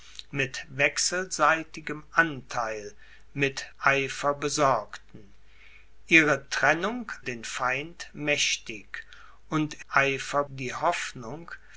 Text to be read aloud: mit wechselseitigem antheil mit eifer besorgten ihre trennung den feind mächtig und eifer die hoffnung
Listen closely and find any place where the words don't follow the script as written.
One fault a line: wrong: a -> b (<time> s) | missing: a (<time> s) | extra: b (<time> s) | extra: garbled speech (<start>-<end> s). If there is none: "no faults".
no faults